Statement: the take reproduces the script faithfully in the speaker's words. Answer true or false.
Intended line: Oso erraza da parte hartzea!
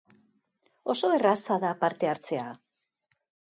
true